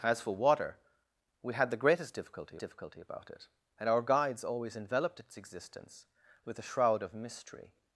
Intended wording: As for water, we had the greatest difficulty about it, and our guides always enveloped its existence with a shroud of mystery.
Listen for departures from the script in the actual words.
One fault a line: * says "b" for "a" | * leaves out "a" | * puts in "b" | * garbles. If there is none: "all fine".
* puts in "difficulty"